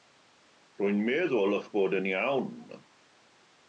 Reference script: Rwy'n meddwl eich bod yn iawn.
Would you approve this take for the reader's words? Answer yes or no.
yes